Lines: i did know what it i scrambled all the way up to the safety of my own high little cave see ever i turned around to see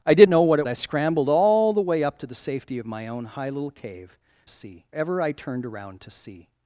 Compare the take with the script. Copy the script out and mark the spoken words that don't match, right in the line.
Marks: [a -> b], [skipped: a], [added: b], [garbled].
i did know what it i scrambled all the way up to the safety of my own high little cave see ever i turned around to see